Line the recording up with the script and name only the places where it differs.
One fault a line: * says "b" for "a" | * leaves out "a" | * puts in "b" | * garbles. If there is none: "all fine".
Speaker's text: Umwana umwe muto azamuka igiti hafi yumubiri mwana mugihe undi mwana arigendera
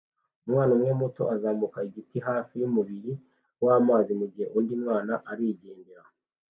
* says "wamazi" for "mwana"